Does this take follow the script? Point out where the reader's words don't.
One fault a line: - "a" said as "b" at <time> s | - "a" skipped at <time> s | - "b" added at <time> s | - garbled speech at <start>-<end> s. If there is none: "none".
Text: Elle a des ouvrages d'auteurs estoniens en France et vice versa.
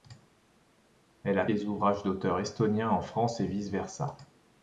none